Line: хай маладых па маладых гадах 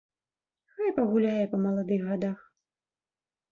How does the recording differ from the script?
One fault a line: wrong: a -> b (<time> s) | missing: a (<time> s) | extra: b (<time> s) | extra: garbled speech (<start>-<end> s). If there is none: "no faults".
wrong: маладых -> пагуляе (1.0 s)